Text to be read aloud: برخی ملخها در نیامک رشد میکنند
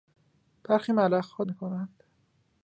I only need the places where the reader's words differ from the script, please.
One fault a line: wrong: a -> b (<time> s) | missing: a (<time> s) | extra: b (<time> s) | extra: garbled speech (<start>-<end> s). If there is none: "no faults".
missing: در نیامک رشد (1.4 s)